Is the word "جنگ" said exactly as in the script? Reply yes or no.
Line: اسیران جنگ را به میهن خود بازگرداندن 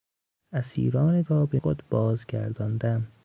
no